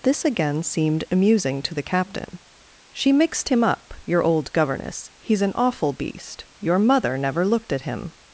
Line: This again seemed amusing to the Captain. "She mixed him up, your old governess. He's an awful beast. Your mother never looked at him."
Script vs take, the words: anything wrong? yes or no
no